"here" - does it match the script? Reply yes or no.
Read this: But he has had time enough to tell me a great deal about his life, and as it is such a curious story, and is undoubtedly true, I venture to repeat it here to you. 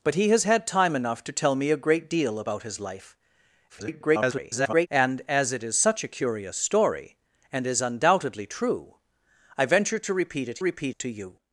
no